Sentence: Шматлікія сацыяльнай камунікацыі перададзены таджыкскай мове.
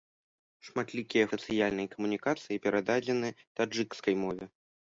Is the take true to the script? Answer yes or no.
yes